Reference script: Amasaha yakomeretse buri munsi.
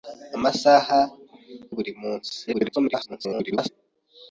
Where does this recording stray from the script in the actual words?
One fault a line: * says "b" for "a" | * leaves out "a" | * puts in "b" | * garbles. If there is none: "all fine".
* leaves out "yakomeretse"
* garbles